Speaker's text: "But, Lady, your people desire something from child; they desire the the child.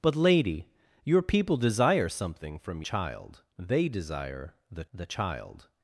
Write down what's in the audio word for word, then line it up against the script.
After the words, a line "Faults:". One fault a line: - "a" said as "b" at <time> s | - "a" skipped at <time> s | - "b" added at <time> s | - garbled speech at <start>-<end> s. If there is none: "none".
"But, Lady, your people desire something from child; they desire the the child.
Faults:
none